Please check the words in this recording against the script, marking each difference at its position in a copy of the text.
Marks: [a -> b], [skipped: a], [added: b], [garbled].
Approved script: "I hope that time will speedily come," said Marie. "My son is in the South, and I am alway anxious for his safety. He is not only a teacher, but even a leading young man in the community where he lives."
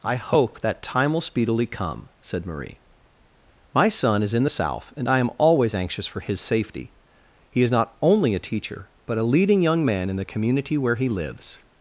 "I hope that time will speedily come," said Marie. "My son is in the South, and I am [alway -> always] anxious for his safety. He is not only a teacher, but [skipped: even] a leading young man in the community where he lives."